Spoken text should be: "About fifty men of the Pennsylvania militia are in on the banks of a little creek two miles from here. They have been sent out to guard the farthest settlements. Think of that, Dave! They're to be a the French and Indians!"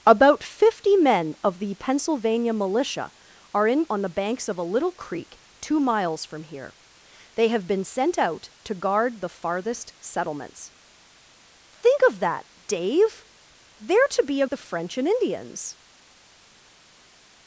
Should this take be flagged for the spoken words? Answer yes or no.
no